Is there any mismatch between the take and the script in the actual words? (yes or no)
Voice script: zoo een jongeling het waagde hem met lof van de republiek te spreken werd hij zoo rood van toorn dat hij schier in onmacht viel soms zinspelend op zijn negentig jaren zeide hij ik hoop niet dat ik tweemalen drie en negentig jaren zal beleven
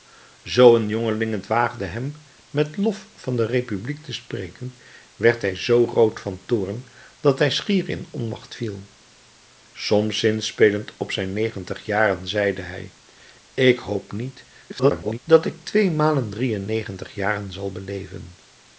yes